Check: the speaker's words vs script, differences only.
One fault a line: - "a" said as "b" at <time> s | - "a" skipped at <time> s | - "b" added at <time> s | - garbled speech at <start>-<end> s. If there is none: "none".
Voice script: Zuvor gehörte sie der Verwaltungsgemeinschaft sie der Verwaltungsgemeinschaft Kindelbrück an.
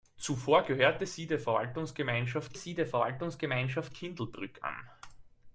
none